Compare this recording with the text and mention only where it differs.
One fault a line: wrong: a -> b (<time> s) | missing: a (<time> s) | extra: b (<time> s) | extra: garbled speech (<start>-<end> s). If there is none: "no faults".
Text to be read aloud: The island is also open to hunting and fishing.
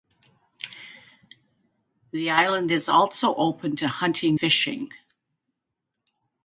missing: and (4.4 s)